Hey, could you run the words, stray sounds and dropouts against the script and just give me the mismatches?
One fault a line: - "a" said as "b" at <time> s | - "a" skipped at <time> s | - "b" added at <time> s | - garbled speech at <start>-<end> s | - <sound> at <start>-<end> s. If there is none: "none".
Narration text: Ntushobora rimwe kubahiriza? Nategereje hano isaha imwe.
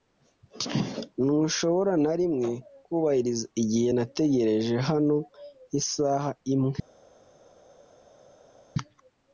- "na" added at 2.0 s
- "igihe" added at 3.6 s